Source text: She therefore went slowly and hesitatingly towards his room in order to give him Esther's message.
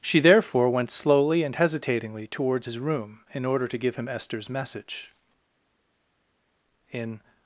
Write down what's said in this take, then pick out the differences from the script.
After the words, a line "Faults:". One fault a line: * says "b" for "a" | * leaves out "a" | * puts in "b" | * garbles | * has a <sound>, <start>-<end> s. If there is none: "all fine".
She therefore went slowly and hesitatingly towards his room in order to give him Esther's message. In
Faults:
* puts in "In"